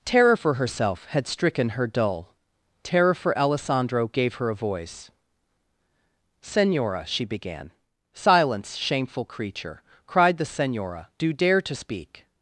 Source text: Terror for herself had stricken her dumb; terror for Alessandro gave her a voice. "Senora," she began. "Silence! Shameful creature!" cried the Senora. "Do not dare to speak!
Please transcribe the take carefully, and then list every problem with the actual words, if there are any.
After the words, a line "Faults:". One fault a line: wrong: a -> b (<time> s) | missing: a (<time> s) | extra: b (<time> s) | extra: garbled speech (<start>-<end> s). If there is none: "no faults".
Terror for herself had stricken her dull; terror for Alessandro gave her a voice. "Senora," she began. "Silence! Shameful creature!" cried the Senora. "Do dare to speak!
Faults:
wrong: dumb -> dull (1.9 s)
missing: not (11.3 s)